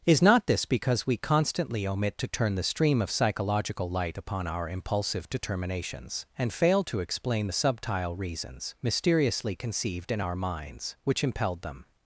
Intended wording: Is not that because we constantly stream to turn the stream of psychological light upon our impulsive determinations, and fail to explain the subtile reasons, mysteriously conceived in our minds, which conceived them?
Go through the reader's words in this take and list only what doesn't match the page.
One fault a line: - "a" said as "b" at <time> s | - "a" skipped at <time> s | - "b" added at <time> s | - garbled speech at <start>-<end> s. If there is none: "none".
- "that" said as "this" at 0.5 s
- "stream" said as "omit" at 1.9 s
- "conceived" said as "impelled" at 11.2 s